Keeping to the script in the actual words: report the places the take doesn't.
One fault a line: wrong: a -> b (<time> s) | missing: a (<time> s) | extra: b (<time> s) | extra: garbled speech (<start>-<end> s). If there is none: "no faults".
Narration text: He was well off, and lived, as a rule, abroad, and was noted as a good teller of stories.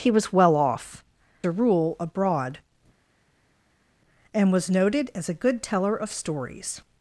missing: and lived as (1.0 s)